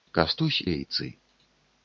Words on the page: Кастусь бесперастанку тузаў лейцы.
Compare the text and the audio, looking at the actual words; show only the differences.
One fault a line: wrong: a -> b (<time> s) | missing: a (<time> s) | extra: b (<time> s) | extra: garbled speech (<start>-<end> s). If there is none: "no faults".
missing: бесперастанку тузаў (0.6 s)